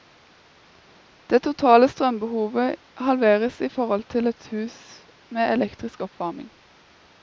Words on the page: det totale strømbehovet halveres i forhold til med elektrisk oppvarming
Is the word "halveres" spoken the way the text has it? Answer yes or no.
yes